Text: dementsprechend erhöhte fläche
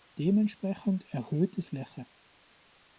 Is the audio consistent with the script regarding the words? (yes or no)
yes